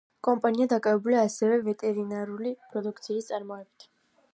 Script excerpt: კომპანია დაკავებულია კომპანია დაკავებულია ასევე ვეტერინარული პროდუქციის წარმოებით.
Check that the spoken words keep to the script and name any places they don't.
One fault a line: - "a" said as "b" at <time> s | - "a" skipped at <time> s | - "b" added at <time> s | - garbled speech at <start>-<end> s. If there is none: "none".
- "კომპანია დაკავებულია" skipped at 1.3 s